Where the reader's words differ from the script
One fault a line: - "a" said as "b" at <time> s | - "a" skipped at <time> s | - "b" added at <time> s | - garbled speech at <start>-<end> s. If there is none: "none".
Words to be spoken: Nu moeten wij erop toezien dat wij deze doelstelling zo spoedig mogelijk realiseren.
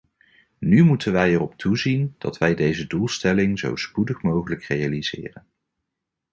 none